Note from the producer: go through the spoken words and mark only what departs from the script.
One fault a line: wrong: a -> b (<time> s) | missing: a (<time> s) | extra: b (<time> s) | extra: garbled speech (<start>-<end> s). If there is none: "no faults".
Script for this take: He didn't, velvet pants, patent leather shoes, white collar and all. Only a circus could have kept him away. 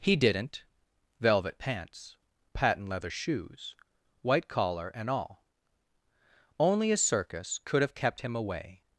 no faults